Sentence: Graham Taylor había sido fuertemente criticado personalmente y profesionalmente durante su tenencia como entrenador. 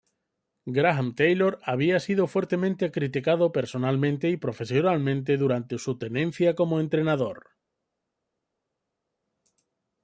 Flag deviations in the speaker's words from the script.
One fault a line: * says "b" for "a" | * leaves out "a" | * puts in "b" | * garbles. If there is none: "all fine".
all fine